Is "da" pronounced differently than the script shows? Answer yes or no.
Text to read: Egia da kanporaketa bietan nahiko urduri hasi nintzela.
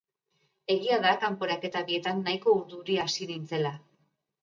no